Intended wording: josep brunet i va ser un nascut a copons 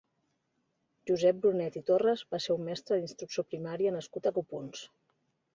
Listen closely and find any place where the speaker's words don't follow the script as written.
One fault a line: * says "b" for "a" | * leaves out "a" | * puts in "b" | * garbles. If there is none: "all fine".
* puts in "torres"
* puts in "mestre d'instrucció primària"